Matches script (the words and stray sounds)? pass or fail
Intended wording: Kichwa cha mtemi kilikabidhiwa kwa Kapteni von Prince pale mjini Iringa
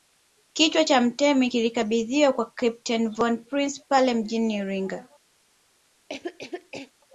fail